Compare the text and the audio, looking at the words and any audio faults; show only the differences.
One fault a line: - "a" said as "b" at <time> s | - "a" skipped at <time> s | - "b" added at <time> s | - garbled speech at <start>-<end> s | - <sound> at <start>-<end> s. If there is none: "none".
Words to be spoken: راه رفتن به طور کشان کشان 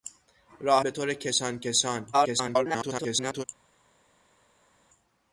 - "رفتن" skipped at 0.8 s
- garbled speech at 2.1-3.4 s